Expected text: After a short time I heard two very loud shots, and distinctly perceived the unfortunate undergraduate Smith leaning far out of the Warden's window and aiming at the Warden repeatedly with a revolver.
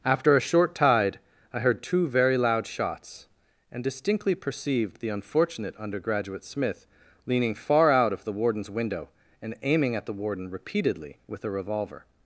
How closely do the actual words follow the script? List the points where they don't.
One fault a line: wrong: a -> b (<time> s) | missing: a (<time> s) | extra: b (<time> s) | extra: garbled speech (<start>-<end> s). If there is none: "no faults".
wrong: time -> tide (0.7 s)